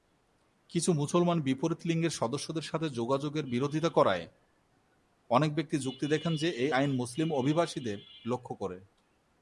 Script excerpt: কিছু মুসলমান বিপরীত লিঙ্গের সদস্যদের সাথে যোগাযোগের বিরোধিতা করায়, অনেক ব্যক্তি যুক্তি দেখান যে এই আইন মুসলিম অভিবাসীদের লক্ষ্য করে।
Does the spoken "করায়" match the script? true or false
true